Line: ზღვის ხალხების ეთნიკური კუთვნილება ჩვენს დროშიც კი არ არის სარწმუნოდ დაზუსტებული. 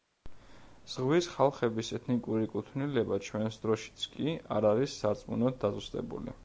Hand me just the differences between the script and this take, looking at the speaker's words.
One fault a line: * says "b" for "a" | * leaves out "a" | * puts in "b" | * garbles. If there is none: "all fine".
all fine